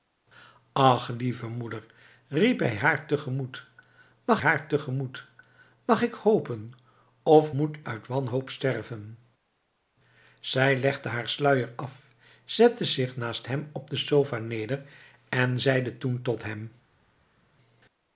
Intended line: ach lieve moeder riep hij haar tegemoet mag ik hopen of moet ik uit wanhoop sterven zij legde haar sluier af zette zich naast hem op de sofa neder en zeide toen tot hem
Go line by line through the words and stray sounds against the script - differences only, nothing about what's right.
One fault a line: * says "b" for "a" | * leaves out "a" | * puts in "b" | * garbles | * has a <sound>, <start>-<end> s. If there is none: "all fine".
* puts in "haar tegemoet mag"
* leaves out "ik"